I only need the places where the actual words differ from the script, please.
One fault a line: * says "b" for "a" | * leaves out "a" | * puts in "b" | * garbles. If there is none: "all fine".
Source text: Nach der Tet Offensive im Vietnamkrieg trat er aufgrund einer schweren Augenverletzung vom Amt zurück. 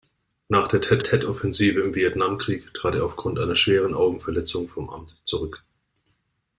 * puts in "Tet"